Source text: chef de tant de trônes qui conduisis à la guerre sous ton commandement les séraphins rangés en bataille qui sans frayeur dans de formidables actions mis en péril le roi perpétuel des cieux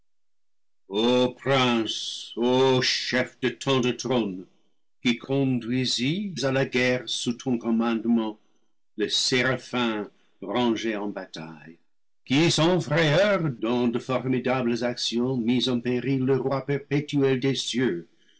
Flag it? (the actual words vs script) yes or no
no